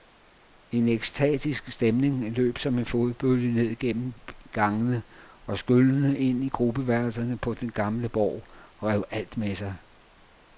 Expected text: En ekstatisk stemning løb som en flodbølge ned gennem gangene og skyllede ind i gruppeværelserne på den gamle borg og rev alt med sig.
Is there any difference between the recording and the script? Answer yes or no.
no